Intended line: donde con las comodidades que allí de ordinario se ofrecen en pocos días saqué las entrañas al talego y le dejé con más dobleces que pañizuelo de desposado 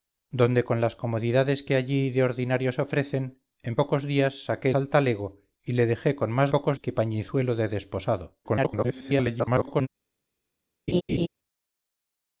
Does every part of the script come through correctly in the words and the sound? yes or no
no